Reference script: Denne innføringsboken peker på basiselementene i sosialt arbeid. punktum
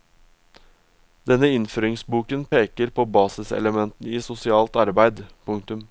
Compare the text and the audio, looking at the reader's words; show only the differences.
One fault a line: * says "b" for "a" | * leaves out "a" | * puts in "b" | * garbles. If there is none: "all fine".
all fine